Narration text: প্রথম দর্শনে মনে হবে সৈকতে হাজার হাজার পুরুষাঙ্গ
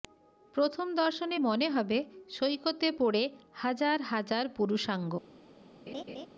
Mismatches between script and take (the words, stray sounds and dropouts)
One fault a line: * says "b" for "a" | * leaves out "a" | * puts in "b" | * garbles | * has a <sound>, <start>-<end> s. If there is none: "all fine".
* puts in "পড়ে"
* has a laugh, 5.9-6.3 s